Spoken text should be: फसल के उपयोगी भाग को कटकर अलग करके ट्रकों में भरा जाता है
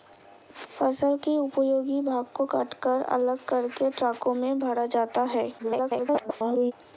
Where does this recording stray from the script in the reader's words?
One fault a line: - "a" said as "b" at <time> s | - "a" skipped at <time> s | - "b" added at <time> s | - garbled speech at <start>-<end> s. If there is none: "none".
- garbled speech at 5.6-6.7 s